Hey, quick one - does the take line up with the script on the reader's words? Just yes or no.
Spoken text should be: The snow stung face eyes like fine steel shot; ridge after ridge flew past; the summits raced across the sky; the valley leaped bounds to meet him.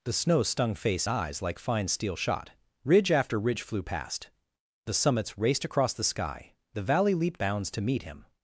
yes